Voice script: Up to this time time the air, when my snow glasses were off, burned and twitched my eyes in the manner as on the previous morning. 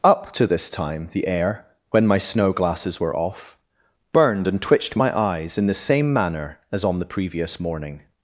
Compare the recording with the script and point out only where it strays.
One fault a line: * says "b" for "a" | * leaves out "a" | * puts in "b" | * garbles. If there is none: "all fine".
* leaves out "time"
* puts in "same"